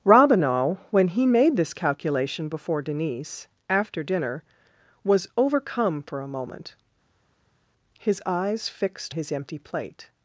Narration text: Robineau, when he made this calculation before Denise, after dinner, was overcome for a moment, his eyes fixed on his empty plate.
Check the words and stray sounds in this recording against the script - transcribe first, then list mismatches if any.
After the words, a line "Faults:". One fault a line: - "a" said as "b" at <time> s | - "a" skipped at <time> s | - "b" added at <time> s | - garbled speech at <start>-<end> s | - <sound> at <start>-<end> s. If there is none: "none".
Robineau, when he made this calculation before Denise, after dinner, was overcome for a moment, his eyes fixed his empty plate.
Faults:
- "on" skipped at 9.1 s